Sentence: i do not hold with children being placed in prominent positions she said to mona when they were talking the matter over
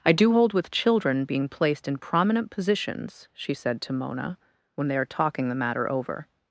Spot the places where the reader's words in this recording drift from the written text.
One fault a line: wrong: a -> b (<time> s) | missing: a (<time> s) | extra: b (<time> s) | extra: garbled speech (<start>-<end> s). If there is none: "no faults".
missing: not (0.3 s)
wrong: were -> are (5.0 s)